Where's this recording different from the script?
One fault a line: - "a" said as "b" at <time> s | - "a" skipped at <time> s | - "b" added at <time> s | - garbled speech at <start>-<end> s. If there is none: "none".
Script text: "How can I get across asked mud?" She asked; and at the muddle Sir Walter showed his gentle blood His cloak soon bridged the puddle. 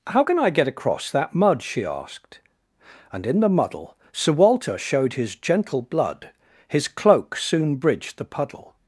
- "asked" said as "that" at 1.1 s
- "at" said as "in" at 3.3 s